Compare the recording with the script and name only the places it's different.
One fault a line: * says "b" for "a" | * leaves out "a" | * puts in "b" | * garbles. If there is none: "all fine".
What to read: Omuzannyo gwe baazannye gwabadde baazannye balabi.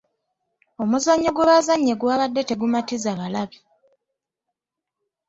* says "tegumatiza" for "baazannye"